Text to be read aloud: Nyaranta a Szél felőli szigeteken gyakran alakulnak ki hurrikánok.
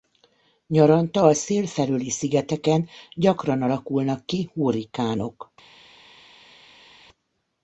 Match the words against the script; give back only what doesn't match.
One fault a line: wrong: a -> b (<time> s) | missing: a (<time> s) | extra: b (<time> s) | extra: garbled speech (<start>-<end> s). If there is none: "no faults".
no faults